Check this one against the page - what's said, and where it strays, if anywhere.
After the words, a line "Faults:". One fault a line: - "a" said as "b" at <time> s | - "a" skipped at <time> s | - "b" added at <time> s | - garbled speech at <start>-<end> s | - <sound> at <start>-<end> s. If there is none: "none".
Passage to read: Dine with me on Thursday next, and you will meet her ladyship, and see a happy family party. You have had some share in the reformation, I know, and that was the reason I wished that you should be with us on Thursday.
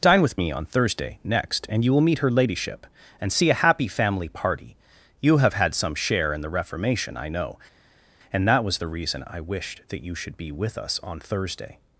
Dine with me on Thursday next, and you will meet her ladyship, and see a happy family party. You have had some share in the reformation, I know, and that was the reason I wished that you should be with us on Thursday.
Faults:
none